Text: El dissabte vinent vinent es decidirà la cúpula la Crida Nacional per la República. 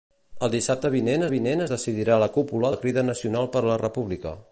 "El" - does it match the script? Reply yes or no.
yes